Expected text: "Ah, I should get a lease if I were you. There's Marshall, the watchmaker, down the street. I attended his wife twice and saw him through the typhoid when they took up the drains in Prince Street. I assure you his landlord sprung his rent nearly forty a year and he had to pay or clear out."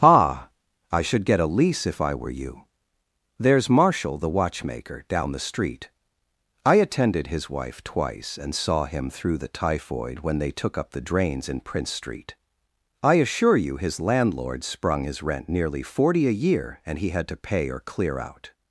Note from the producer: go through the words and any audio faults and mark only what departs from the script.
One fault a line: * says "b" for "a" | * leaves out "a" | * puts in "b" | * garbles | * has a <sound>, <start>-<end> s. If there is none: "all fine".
all fine